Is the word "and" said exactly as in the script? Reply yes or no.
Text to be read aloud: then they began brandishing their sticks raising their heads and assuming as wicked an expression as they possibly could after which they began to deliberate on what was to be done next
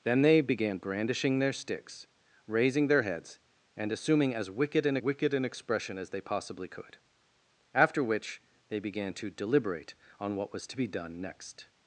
yes